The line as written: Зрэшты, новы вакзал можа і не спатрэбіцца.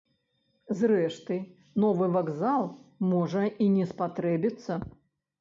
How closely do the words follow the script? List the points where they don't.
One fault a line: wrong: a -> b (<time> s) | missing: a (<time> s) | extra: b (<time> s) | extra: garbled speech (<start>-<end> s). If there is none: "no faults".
no faults